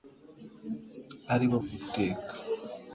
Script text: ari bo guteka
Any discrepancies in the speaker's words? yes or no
no